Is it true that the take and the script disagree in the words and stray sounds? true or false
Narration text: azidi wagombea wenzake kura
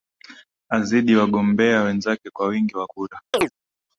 true